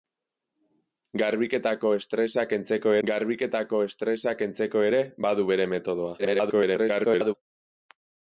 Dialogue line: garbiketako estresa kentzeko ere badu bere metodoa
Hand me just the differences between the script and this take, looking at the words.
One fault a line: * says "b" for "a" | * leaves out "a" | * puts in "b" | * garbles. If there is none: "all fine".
* puts in "garbiketako estresa kentzeko"
* garbles